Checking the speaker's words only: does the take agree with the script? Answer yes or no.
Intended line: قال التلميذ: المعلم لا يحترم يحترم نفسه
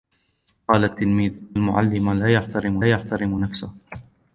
yes